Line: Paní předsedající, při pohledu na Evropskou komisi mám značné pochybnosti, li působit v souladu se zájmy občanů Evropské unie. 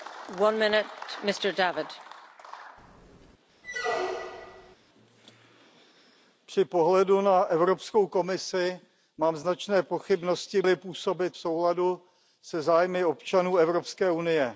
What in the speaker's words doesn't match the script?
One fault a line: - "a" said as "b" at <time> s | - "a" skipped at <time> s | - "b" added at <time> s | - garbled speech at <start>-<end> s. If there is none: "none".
none